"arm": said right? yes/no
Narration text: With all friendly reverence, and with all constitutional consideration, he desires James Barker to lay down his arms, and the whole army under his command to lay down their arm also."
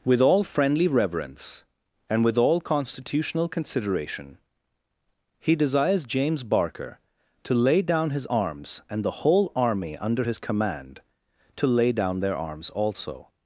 no